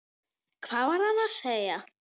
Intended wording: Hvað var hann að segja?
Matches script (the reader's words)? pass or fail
pass